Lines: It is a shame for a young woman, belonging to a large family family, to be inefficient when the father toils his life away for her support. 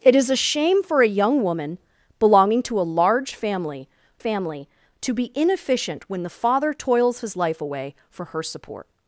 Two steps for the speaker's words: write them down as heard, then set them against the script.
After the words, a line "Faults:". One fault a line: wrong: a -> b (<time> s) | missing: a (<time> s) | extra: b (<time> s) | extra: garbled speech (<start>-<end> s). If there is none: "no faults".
It is a shame for a young woman, belonging to a large family family, to be inefficient when the father toils his life away for her support.
Faults:
no faults